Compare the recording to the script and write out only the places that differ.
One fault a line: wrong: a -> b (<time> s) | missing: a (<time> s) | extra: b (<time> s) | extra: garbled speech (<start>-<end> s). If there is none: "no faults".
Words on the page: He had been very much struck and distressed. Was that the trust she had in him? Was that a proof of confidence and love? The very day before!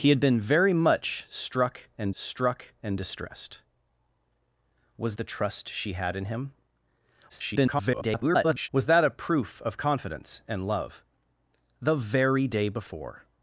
extra: struck and (2.1 s)
missing: that (5.1 s)
extra: garbled speech (7.3-8.7 s)